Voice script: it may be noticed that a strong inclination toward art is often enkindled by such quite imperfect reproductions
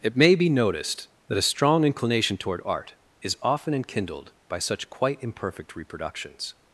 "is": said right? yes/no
yes